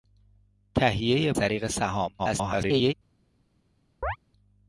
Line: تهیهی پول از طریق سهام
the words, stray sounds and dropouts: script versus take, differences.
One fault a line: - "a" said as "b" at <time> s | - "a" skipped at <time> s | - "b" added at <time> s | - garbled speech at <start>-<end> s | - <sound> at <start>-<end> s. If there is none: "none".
- "پول از" skipped at 1.3 s
- garbled speech at 2.2-2.9 s
- chirp at 4.0-4.2 s